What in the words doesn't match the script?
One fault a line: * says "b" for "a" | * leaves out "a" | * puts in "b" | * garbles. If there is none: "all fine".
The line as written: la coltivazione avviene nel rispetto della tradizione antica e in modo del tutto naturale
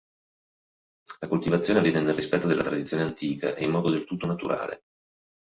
all fine